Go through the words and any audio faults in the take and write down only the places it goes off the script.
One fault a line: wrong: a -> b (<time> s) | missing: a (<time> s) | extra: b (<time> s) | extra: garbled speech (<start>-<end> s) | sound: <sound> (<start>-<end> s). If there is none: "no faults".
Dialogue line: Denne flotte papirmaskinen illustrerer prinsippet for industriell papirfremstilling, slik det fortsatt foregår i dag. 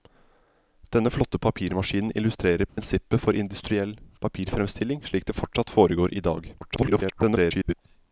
sound: dropout (2.7-2.8 s)
extra: garbled speech (6.6-7.7 s)